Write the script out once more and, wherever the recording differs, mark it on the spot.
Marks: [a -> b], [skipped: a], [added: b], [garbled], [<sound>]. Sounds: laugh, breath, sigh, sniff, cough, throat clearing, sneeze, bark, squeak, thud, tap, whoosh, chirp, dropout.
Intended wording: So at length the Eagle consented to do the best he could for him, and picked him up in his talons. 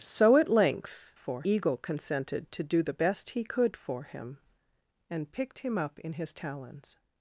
So at length [the -> for] Eagle consented to do the best he could for him, and picked him up in his talons.